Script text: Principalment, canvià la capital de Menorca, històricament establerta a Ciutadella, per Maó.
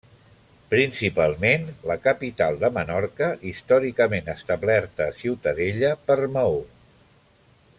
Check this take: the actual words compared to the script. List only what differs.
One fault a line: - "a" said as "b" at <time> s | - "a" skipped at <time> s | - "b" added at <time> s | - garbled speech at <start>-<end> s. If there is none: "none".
- "canvià" skipped at 1.7 s